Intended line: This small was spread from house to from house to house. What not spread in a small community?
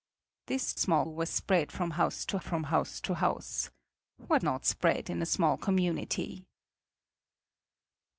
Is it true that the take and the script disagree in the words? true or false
false